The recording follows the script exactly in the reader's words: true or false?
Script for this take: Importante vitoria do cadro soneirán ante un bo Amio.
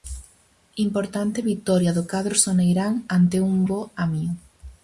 true